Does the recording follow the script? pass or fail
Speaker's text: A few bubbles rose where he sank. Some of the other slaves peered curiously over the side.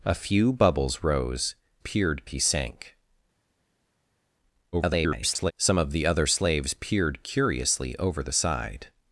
fail